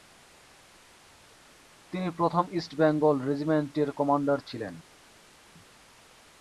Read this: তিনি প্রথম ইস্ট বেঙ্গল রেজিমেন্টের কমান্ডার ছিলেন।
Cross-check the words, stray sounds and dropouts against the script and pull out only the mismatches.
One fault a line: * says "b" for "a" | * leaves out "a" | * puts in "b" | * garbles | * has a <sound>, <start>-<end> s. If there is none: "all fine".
all fine